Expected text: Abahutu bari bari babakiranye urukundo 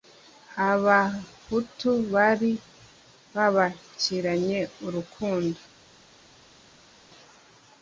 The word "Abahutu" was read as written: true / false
true